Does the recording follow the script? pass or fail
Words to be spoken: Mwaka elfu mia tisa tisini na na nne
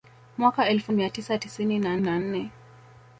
pass